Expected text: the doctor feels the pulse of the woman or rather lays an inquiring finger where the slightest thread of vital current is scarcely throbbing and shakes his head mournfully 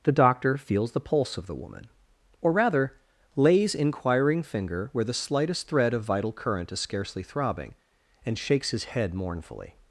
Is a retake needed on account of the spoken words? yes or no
yes